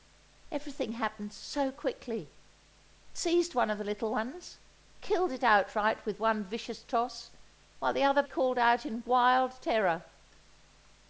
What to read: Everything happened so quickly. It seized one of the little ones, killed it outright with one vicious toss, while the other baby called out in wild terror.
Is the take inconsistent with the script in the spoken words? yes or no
yes